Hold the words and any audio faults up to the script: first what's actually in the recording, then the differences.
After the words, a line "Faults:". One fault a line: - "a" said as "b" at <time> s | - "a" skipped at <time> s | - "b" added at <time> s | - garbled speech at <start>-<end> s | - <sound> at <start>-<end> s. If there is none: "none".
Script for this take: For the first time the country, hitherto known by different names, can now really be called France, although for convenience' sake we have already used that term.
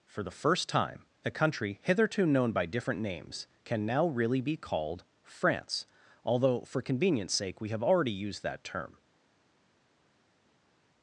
For the first time a country, hitherto known by different names, can now really be called France, although for convenience' sake we have already used that term.
Faults:
- "the" said as "a" at 1.2 s